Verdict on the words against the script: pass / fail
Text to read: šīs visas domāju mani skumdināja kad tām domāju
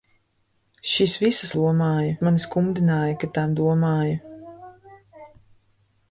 pass